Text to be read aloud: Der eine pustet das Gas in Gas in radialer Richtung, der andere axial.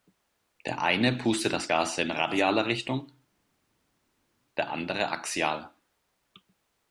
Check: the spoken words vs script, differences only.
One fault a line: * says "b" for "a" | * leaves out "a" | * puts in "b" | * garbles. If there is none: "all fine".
* leaves out "Gas in"